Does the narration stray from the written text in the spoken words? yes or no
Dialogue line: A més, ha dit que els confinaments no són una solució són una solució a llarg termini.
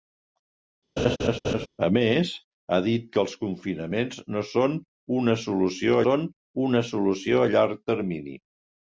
no